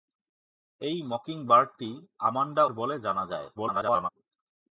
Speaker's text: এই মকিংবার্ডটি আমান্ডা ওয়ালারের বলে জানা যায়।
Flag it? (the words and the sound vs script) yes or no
yes